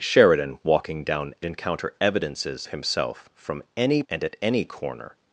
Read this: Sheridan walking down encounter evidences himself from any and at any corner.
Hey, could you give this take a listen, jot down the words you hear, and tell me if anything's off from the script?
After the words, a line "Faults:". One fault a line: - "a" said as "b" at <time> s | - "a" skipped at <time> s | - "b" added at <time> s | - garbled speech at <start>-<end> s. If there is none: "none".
Sheridan walking down encounter evidences himself from any and at any corner.
Faults:
none